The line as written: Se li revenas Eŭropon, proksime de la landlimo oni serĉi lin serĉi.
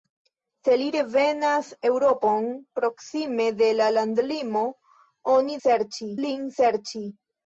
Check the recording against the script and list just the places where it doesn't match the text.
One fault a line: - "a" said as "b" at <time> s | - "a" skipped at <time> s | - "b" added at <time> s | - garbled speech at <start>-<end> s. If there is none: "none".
none